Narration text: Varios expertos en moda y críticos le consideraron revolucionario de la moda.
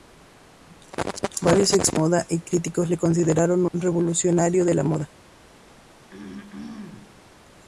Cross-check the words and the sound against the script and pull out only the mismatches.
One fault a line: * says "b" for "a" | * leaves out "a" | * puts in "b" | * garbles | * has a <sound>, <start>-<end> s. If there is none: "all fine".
* has a throat clearing, 6.1-7.3 s